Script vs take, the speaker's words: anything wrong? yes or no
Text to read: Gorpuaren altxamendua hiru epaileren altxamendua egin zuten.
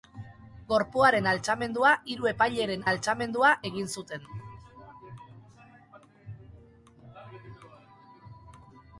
no